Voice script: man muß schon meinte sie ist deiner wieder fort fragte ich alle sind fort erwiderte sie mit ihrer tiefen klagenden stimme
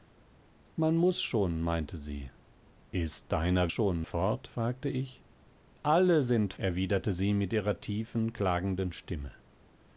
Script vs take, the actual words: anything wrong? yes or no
yes